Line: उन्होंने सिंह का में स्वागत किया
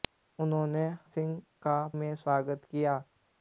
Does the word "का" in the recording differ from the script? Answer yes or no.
no